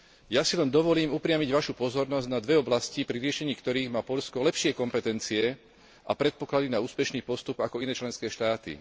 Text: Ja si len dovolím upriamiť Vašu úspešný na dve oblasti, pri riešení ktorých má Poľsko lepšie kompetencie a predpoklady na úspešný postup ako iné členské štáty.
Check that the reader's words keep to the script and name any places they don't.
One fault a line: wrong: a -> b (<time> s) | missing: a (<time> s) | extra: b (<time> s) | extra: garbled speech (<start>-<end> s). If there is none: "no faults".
wrong: úspešný -> pozornosť (1.8 s)